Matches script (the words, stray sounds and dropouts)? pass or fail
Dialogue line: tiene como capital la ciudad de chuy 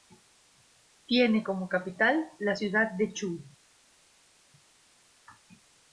pass